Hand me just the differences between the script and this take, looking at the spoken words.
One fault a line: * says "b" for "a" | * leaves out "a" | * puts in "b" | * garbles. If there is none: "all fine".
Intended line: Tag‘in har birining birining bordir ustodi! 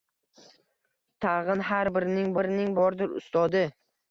all fine